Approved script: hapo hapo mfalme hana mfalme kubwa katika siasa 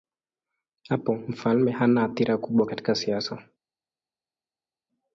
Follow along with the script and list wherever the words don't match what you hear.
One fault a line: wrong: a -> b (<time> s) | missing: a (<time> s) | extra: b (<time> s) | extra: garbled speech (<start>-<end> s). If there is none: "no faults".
missing: hapo (1.1 s)
wrong: mfalme -> athira (2.0 s)